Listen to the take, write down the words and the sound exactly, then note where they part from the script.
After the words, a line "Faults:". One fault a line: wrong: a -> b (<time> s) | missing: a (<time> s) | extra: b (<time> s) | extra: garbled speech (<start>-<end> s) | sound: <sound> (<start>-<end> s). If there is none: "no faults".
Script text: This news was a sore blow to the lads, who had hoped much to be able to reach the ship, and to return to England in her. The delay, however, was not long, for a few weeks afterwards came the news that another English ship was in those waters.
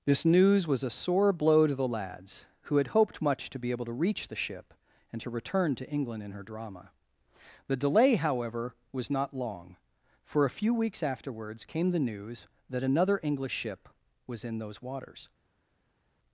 This news was a sore blow to the lads, who had hoped much to be able to reach the ship, and to return to England in her. drama The delay, however, was not long, for a few weeks afterwards came the news that another English ship was in those waters.
Faults:
extra: drama (6.4 s)